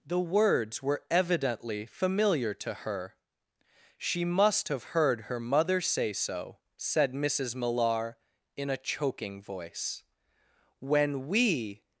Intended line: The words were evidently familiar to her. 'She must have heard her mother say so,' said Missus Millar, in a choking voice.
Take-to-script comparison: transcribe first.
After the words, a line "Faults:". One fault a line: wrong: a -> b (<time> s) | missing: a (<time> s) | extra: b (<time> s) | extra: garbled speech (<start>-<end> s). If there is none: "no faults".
The words were evidently familiar to her. 'She must have heard her mother say so,' said Missus Millar, in a choking voice. When we
Faults:
extra: When we (10.8 s)